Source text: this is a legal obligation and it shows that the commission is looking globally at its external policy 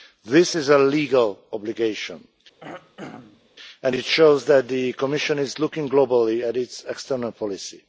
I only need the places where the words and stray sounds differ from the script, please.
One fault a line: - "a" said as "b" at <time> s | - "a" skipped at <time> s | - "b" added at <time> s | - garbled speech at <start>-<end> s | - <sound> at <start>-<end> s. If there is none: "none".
- throat clearing at 2.6-3.5 s